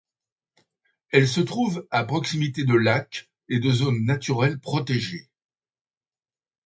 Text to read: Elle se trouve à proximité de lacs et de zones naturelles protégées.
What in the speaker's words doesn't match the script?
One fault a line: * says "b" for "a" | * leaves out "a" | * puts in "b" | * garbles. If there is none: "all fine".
all fine